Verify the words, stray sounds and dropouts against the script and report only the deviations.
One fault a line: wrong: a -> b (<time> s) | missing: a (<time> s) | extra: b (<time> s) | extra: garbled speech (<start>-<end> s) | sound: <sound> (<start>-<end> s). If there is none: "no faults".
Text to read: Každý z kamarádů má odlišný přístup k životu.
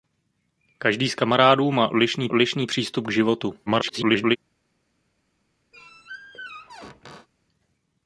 extra: odlišný (2.3 s)
extra: garbled speech (3.7-4.4 s)
sound: squeak (5.7-7.3 s)